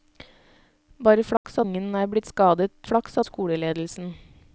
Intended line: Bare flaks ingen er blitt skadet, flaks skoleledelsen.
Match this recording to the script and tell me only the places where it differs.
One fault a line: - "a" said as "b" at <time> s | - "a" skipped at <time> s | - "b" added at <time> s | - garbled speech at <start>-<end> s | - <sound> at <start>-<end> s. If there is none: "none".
- dropout at 1.4-1.4 s